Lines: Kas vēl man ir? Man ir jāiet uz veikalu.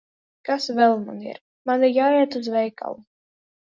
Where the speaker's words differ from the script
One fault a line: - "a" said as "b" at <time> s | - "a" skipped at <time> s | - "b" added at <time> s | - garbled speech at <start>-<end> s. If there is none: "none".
none